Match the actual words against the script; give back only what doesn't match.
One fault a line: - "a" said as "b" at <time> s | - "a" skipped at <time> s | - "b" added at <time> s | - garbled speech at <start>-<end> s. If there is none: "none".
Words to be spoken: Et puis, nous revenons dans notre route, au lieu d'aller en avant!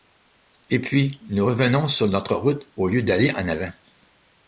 - "dans" said as "sur" at 1.9 s